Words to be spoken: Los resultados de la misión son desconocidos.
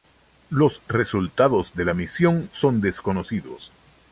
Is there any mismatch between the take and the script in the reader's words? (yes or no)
no